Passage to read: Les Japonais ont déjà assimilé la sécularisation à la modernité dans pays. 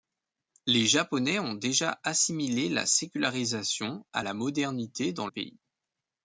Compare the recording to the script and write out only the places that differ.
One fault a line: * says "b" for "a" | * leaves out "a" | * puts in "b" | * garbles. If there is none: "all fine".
all fine